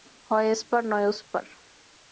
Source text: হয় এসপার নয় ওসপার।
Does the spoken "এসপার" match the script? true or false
true